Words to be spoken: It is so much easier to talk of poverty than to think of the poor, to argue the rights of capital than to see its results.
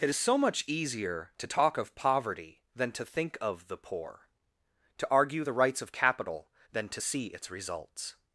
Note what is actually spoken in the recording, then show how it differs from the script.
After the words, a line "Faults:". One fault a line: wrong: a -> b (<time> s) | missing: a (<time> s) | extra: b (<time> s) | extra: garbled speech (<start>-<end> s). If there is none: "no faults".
It is so much easier to talk of poverty than to think of the poor, to argue the rights of capital than to see its results.
Faults:
no faults